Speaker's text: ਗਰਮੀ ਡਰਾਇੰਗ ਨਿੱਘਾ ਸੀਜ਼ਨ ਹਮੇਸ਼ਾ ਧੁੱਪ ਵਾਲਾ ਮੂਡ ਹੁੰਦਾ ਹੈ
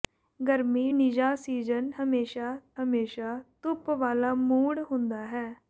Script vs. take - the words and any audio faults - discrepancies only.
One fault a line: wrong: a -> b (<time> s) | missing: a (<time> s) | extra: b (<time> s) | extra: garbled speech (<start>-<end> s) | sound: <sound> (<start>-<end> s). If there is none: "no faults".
missing: ਡਰਾਇੰਗ (0.9 s)
extra: ਹਮੇਸ਼ਾ (2.8 s)